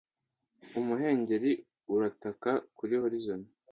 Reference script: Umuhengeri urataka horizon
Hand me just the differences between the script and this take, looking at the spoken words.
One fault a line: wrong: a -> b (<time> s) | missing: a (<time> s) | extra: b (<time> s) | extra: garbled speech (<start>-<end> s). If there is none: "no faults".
extra: kuri (2.8 s)